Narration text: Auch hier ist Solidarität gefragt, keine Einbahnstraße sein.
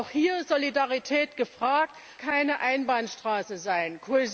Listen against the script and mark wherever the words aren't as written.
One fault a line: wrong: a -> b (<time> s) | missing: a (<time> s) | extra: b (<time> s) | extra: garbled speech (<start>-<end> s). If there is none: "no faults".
no faults